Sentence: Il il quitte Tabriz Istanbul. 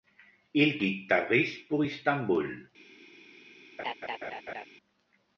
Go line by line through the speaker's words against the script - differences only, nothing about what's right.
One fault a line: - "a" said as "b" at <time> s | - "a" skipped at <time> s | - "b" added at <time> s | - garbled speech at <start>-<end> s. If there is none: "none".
- "il" skipped at 0.8 s
- "pour" added at 1.7 s